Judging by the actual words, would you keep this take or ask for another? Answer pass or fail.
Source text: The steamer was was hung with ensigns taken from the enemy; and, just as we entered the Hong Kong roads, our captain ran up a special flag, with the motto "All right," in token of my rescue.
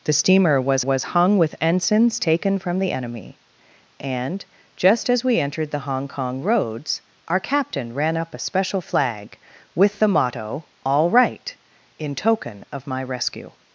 pass